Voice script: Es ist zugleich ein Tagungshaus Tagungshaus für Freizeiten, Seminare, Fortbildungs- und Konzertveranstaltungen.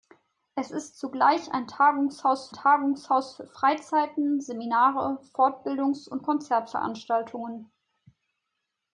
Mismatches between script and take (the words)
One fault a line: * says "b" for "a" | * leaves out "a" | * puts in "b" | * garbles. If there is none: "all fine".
all fine